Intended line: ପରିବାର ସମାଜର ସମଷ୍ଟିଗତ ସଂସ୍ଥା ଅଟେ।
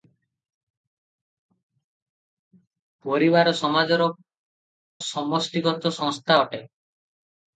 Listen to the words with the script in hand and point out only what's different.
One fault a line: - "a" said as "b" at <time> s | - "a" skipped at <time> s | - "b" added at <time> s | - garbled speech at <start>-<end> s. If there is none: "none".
none